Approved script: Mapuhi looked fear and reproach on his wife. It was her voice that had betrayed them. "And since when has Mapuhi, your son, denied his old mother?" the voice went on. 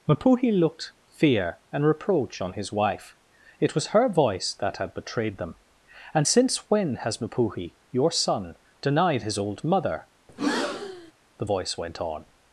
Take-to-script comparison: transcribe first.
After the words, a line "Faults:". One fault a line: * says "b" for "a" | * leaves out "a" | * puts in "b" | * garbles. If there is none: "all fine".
Mapuhi looked fear and reproach on his wife. It was her voice that had betrayed them. "And since when has Mapuhi, your son, denied his old mother?" the voice went on.
Faults:
all fine